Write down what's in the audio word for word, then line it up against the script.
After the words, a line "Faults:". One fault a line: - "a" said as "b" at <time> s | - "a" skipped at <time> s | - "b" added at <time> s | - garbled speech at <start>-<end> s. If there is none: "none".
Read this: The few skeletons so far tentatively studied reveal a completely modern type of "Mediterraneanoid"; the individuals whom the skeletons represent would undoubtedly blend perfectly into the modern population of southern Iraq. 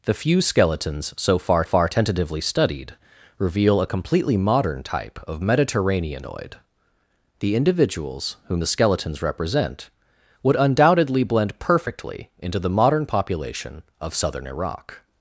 The few skeletons so far far tentatively studied reveal a completely modern type of "Mediterraneanoid"; the individuals whom the skeletons represent would undoubtedly blend perfectly into the modern population of southern Iraq.
Faults:
- "far" added at 1.6 s